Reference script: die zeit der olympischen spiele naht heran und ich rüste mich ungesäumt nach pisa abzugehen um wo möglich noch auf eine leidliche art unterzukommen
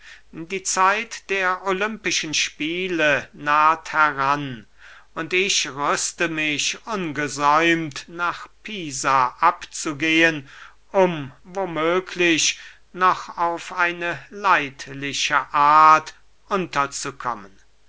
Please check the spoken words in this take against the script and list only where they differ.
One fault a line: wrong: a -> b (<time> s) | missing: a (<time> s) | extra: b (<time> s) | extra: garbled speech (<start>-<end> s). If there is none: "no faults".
no faults